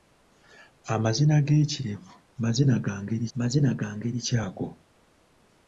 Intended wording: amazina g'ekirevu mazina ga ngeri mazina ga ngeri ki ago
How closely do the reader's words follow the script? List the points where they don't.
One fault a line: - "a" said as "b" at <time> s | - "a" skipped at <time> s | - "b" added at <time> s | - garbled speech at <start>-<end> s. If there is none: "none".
none